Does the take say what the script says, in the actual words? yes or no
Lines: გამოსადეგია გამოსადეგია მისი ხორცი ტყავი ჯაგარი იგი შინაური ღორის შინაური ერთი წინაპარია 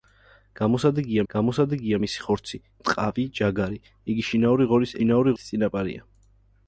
yes